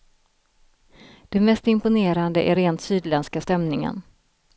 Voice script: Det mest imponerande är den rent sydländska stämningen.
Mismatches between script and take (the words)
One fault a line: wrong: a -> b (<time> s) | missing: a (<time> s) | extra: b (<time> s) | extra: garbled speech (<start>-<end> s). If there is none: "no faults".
missing: den (2.5 s)